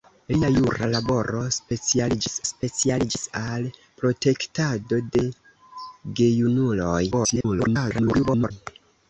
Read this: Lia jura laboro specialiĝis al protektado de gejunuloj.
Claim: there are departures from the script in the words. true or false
true